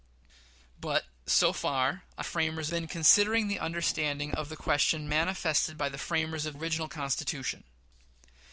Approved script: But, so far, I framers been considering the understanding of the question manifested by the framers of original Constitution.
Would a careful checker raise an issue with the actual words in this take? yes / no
no